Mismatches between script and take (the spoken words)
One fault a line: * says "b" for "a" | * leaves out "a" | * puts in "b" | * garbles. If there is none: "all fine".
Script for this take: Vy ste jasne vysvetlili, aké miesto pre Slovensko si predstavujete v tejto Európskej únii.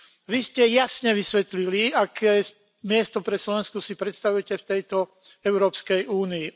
all fine